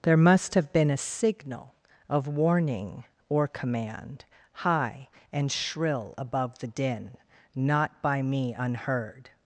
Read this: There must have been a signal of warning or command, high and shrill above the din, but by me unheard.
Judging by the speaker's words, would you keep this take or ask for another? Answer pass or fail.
fail